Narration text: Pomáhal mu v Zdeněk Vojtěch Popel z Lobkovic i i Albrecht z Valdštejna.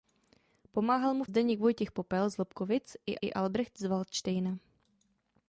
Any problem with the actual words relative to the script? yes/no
no